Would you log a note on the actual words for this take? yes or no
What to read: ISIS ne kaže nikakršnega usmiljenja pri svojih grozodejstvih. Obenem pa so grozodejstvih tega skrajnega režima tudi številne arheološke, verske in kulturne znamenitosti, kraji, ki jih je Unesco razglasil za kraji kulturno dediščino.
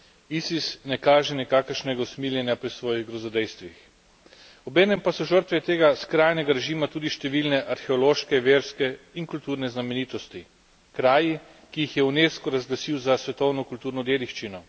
yes